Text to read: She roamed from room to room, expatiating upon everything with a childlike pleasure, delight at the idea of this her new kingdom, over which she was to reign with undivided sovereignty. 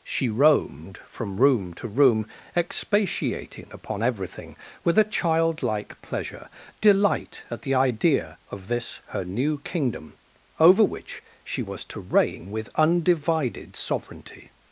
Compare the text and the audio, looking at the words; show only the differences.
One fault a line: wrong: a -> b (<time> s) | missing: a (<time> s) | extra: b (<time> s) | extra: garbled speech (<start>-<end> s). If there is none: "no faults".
no faults